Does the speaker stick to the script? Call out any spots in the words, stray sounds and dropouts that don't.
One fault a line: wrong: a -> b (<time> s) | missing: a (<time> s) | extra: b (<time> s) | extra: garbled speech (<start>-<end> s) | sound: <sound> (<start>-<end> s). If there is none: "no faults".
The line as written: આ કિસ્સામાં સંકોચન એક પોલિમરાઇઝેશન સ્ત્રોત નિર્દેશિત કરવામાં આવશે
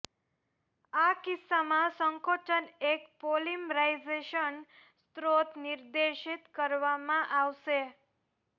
no faults